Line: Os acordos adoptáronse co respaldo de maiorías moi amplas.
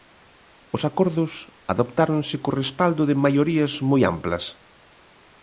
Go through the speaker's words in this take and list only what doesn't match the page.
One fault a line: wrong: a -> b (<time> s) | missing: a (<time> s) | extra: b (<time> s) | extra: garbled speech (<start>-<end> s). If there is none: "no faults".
no faults